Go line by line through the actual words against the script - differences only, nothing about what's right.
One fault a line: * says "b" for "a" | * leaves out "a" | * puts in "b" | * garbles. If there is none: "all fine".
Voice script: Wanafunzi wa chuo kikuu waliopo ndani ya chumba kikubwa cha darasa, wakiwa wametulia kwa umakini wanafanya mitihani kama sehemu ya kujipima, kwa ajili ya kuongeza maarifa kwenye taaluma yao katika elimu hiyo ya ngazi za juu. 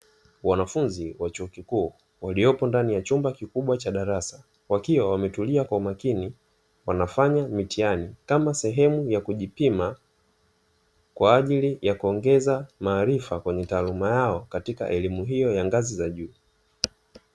all fine